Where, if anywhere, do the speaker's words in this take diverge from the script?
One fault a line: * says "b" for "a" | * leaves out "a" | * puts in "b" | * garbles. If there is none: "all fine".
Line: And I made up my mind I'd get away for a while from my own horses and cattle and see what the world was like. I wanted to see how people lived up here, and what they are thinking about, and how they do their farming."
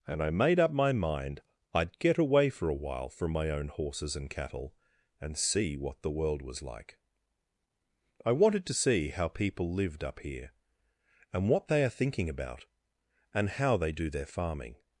all fine